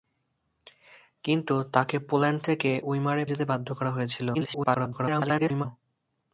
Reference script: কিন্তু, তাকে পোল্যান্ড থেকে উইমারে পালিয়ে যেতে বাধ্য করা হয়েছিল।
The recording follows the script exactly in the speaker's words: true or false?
false